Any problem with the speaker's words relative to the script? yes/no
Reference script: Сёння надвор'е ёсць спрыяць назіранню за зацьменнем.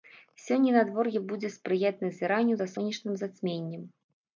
yes